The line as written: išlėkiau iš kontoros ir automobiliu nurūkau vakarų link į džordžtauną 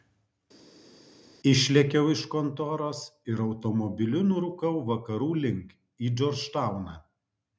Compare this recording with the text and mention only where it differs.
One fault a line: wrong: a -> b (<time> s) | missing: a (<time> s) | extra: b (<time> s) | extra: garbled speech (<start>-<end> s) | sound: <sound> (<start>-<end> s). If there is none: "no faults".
no faults